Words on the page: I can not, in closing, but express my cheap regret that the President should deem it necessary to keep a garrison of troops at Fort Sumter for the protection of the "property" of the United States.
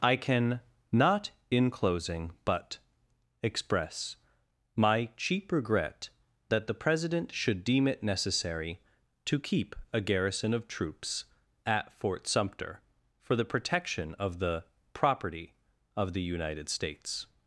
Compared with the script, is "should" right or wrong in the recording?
right